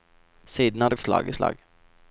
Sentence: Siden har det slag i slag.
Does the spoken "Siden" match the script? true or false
true